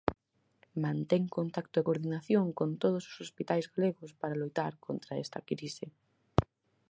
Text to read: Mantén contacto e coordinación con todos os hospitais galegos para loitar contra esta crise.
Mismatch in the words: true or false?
false